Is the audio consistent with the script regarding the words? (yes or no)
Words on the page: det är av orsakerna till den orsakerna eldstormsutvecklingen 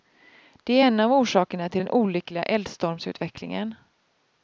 no